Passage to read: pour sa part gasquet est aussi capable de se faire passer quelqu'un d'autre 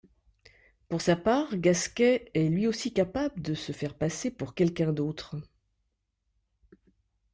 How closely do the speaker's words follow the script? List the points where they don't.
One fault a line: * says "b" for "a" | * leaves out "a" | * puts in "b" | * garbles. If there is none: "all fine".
* puts in "lui"
* puts in "pour"